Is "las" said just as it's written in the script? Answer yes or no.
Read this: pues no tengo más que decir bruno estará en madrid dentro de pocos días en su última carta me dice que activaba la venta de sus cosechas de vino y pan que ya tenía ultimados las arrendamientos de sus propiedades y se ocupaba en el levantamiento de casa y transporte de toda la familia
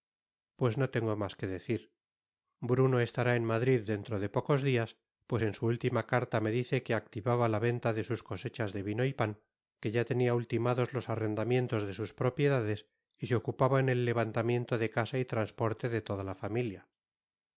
no